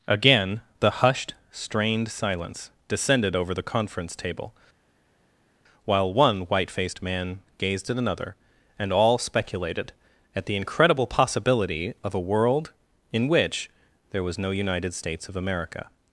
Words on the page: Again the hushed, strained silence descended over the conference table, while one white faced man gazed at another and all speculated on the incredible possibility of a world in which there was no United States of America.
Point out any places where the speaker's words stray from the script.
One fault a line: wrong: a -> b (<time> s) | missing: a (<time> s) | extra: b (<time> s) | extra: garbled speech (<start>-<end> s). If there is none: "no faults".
wrong: on -> at (10.4 s)